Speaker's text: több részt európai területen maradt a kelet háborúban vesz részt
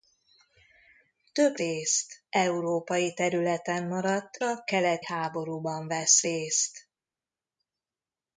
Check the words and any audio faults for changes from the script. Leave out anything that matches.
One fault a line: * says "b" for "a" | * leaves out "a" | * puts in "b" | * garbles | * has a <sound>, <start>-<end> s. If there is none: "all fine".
all fine